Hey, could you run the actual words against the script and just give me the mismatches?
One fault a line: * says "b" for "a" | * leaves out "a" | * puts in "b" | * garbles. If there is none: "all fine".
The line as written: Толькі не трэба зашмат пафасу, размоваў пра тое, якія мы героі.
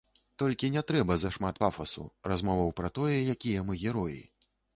all fine